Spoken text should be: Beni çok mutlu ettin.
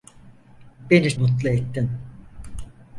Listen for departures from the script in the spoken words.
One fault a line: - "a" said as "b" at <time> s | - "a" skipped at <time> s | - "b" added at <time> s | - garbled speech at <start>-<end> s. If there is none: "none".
- "çok" skipped at 1.2 s